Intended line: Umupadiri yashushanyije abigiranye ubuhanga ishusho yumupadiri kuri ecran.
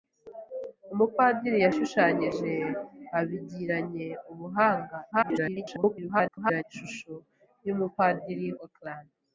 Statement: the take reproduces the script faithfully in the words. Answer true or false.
false